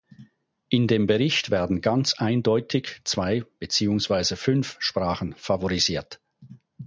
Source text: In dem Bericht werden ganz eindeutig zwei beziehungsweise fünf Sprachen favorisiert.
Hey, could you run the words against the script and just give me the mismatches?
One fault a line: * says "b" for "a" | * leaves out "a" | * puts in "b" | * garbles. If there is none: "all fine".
all fine